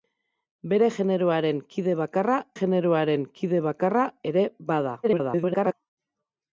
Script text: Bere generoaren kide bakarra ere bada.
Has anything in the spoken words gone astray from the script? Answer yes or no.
yes